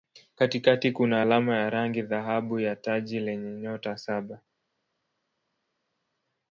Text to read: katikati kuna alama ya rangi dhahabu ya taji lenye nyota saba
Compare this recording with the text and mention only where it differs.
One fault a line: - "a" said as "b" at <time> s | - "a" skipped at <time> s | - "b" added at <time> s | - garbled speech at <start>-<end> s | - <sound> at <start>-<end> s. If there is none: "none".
none